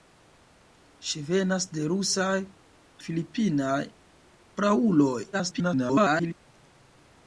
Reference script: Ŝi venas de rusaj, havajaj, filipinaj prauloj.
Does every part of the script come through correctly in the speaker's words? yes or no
no